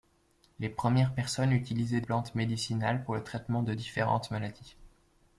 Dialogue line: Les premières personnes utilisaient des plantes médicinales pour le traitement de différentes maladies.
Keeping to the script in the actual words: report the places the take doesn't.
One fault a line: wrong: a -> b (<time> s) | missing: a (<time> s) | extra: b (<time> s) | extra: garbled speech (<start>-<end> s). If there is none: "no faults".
missing: des (2.0 s)